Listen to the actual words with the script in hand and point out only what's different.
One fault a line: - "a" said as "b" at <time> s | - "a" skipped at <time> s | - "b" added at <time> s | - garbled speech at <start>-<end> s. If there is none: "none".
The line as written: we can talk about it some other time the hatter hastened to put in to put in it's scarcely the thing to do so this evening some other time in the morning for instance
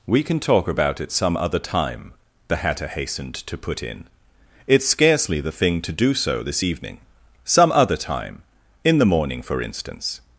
- "to put in" skipped at 4.1 s